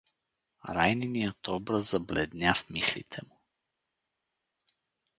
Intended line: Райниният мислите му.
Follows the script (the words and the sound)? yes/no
no